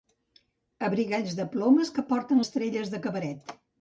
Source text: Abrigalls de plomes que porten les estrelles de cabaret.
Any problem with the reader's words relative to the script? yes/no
yes